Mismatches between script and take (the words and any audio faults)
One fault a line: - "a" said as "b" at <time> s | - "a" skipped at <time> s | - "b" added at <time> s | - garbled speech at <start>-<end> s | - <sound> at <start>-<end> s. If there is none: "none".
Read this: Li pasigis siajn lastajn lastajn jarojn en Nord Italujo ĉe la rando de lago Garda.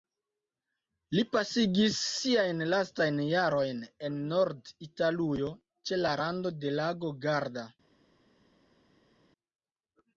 - "lastajn" skipped at 3.2 s